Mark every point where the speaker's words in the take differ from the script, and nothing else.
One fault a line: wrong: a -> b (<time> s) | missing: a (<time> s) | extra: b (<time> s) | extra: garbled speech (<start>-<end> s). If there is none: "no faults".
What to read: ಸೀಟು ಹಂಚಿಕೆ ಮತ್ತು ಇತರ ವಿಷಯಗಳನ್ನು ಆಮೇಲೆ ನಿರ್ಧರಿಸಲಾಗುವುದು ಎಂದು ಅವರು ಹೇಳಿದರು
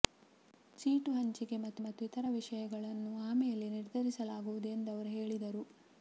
extra: ಮತ್ತು (1.8 s)